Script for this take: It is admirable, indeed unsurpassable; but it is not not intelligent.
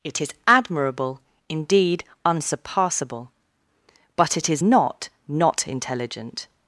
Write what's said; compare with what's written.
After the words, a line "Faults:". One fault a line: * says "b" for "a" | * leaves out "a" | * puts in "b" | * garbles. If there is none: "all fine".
It is admirable, indeed unsurpassable; but it is not not intelligent.
Faults:
all fine